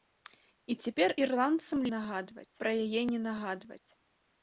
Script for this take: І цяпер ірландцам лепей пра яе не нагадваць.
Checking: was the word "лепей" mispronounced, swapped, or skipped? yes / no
yes